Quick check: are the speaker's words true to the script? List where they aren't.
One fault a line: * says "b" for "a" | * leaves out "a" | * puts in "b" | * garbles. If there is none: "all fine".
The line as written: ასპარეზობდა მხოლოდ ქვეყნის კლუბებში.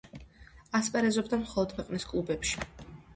all fine